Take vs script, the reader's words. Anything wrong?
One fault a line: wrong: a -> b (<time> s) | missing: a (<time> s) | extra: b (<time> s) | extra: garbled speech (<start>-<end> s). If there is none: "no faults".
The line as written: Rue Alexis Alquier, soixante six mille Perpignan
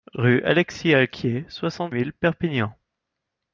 missing: six (1.9 s)